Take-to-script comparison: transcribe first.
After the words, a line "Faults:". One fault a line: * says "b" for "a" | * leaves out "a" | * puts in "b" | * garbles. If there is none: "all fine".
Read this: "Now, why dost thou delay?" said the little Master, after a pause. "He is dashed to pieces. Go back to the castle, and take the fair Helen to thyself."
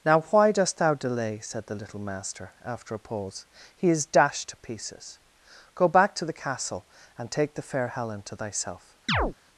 "Now, why dost thou delay?" said the little Master, after a pause. "He is dashed to pieces. Go back to the castle, and take the fair Helen to thyself."
Faults:
all fine